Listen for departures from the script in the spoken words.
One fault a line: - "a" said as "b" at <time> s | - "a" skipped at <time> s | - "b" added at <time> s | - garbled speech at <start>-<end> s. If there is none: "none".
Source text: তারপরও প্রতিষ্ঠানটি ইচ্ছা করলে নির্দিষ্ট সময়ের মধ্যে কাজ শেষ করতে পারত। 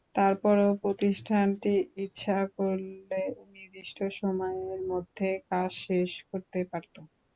none